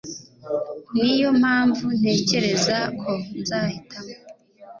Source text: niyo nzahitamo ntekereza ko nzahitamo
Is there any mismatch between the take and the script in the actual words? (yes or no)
yes